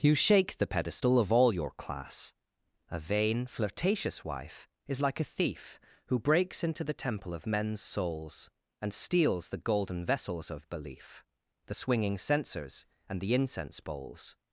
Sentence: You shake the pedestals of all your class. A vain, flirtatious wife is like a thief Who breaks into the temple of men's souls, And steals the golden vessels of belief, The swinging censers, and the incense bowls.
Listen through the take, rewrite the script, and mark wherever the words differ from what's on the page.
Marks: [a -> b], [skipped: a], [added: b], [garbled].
You shake the [pedestals -> pedestal] of all your class. A vain, flirtatious wife is like a thief Who breaks into the temple of men's souls, And steals the golden vessels of belief, The swinging censers, and the incense bowls.